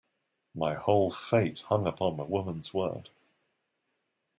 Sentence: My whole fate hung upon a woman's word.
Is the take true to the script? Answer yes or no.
yes